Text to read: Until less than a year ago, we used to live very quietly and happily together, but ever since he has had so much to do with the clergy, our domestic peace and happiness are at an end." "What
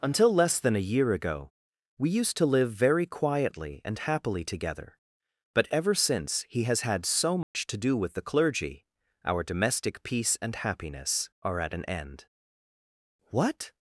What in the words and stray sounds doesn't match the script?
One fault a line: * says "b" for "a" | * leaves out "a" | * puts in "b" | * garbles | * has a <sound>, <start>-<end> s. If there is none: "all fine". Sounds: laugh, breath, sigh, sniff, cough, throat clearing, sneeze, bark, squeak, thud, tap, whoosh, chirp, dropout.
* has a dropout, 7.4-7.5 s